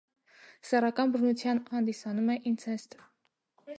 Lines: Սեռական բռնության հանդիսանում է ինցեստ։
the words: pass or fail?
pass